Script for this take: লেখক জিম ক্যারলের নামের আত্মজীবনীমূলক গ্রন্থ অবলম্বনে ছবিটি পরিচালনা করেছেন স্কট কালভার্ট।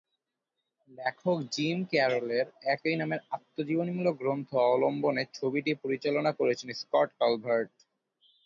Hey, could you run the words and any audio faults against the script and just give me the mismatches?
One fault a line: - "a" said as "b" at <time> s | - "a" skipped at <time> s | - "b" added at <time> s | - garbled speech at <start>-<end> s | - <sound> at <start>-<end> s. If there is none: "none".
- "একই" added at 2.7 s